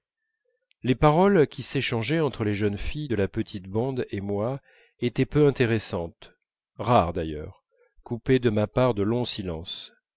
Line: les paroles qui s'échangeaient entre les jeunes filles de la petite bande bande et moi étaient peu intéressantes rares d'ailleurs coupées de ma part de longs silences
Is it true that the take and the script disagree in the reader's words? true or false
true